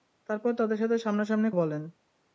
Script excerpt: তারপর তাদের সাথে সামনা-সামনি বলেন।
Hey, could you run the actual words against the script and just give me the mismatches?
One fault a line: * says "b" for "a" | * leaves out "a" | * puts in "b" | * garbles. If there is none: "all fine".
all fine